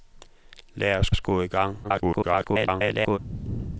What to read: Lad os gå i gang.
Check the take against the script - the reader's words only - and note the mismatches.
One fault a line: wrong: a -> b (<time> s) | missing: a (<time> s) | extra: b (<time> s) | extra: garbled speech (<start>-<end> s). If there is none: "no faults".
extra: os (1.1 s)
extra: garbled speech (1.8-3.2 s)